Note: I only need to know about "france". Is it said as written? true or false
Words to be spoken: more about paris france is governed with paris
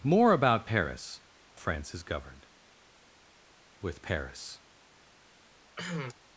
true